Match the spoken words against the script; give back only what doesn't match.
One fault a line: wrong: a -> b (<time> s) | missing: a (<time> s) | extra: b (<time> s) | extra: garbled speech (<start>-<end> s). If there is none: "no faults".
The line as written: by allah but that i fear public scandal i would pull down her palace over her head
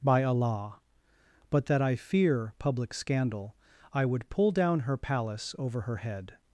no faults